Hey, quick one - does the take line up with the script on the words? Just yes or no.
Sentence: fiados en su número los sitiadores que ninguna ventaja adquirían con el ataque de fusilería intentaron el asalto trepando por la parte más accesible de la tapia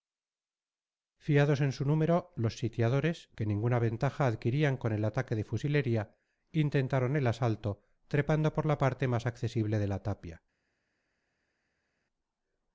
yes